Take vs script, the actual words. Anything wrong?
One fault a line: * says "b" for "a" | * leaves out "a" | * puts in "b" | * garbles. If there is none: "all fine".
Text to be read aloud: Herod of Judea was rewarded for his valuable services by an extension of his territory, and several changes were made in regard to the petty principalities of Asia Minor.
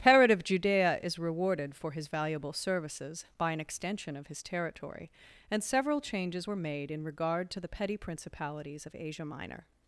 * says "is" for "was"